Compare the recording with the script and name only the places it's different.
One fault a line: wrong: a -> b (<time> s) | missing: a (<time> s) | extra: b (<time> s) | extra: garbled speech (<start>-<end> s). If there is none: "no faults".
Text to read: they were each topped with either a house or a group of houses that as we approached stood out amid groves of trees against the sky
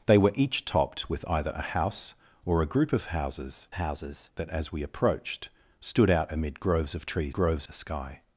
extra: houses (3.7 s)
wrong: against -> groves (7.3 s)